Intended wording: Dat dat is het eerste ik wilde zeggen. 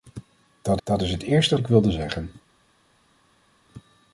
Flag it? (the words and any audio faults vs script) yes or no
no